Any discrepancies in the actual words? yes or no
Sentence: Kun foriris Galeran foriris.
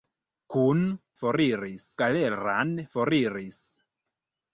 no